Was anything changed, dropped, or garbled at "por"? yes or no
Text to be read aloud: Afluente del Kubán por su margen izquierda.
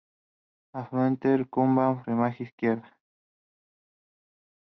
yes